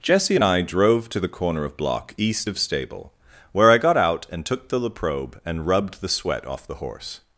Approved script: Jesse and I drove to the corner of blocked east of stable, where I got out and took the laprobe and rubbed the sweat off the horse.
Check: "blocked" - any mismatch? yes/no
yes